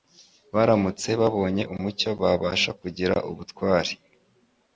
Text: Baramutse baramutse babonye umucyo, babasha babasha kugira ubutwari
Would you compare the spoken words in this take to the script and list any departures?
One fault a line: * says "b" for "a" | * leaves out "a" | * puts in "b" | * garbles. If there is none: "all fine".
* leaves out "baramutse"
* leaves out "babasha"